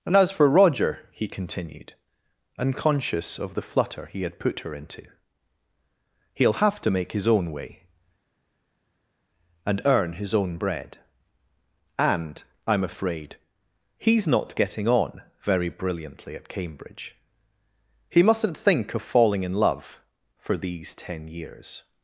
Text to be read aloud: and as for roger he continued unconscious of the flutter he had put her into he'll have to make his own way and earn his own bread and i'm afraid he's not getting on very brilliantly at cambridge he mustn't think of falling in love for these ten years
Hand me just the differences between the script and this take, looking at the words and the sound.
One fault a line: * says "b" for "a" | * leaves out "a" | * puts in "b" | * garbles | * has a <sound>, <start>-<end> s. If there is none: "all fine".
all fine